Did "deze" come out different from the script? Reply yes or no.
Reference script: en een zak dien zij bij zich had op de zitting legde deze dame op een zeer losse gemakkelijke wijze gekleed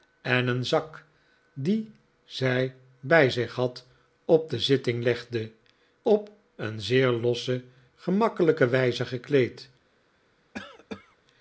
yes